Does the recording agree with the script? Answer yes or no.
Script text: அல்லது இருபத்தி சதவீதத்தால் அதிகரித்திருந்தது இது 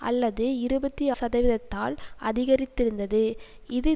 yes